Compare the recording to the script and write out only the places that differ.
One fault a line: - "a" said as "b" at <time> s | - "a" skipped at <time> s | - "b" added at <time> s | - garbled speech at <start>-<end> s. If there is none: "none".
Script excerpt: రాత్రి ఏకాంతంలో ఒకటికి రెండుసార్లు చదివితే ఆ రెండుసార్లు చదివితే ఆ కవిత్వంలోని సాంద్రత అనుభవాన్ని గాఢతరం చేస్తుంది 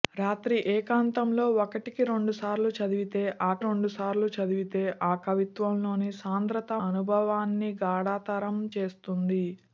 none